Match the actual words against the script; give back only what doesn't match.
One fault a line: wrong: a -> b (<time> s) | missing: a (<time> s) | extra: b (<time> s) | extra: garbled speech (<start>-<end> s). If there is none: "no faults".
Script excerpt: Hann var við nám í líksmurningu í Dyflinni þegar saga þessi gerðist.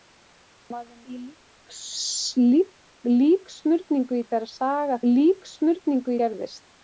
missing: nám (1.0 s)
missing: Dyflinni (4.3 s)
wrong: þessi -> líksmurningu (5.1 s)